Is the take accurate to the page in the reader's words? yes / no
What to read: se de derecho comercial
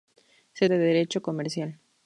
yes